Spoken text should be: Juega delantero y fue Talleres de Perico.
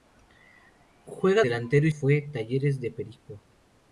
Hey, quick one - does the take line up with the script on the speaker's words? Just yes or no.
yes